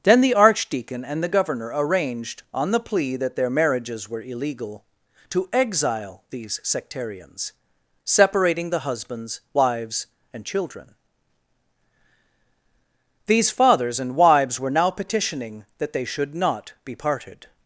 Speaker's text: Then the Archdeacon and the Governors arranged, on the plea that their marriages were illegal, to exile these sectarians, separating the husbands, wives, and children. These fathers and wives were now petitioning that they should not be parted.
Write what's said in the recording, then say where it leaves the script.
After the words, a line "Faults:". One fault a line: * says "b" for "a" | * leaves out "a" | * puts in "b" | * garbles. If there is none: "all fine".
Then the Archdeacon and the Governor arranged, on the plea that their marriages were illegal, to exile these sectarians, separating the husbands, wives, and children. These fathers and wives were now petitioning that they should not be parted.
Faults:
* says "Governor" for "Governors"